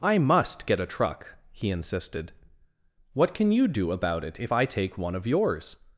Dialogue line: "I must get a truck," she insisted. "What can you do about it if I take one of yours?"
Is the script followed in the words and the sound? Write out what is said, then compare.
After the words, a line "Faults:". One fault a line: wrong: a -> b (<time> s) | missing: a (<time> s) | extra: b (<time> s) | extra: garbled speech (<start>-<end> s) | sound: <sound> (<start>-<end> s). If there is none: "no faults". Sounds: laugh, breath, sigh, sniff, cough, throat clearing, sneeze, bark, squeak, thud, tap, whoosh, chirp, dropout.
"I must get a truck," he insisted. "What can you do about it if I take one of yours?"
Faults:
wrong: she -> he (1.5 s)